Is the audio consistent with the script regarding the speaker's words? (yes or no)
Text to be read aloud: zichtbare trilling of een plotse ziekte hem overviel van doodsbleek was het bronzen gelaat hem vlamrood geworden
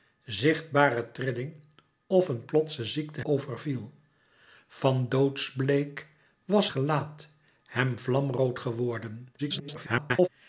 no